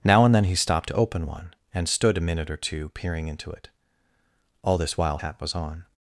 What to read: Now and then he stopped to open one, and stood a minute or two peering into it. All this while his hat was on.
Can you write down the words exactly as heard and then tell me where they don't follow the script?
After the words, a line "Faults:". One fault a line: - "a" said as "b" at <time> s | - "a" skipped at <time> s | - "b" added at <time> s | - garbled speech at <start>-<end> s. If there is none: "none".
Now and then he stopped to open one, and stood a minute or two peering into it. All this while hat was on.
Faults:
- "his" skipped at 5.2 s